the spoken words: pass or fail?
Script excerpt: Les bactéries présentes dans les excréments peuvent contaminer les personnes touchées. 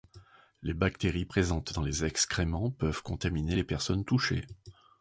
pass